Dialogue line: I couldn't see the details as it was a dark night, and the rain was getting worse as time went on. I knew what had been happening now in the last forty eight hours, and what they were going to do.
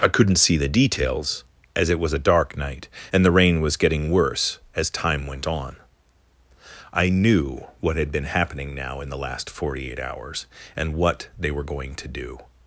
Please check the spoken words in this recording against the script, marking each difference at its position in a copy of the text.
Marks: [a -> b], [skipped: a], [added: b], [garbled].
I couldn't see the details as it was a dark night, and the rain was getting worse as time went on. I knew what had been happening now in the last forty eight hours, and what they were going to do.